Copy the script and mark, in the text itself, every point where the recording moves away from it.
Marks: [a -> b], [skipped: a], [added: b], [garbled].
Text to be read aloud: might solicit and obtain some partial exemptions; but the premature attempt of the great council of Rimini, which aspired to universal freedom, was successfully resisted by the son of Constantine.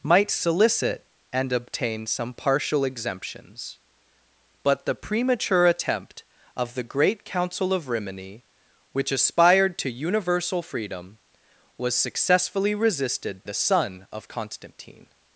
might solicit and obtain some partial exemptions; but the premature attempt of the great council of Rimini, which aspired to universal freedom, was successfully resisted [skipped: by] the son of Constantine.